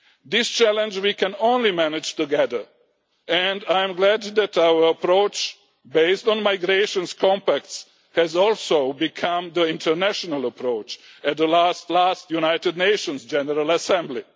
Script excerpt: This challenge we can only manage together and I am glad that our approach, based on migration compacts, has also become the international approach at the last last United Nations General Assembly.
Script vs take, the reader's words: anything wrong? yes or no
no